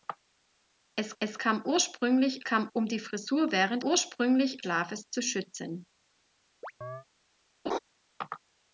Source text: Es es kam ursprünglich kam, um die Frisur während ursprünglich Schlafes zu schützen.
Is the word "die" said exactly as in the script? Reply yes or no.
yes